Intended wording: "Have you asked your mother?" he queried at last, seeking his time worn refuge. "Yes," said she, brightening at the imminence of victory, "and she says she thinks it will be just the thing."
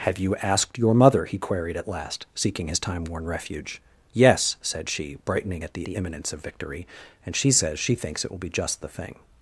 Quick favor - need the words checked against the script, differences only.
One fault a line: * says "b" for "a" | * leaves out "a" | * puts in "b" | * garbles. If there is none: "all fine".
* puts in "the"